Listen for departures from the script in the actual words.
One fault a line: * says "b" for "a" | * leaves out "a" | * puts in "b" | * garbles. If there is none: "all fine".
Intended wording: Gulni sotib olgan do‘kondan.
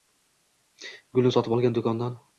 all fine